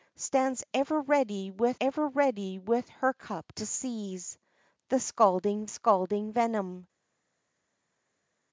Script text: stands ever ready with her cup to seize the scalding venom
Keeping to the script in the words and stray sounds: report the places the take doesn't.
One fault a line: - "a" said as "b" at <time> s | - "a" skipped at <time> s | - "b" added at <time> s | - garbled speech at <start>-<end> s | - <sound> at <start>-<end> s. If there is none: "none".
- "ever ready with" added at 1.8 s
- "scalding" added at 5.7 s